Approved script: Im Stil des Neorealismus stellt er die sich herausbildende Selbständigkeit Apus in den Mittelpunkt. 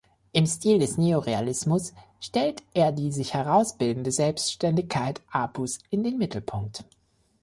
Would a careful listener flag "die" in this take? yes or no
no